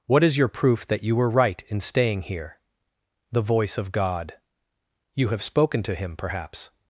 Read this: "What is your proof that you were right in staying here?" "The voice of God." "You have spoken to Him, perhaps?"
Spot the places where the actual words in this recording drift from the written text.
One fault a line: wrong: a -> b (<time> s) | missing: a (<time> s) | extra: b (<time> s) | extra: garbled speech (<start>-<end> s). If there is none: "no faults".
no faults